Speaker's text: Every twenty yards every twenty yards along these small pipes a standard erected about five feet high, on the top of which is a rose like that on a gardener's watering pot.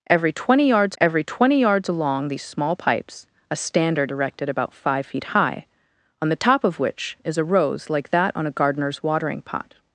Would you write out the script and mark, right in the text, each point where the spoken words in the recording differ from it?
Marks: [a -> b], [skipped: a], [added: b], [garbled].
Every twenty yards every twenty yards along these small pipes a standard erected about five feet high, on the top of which is a rose like that on a gardener's watering pot.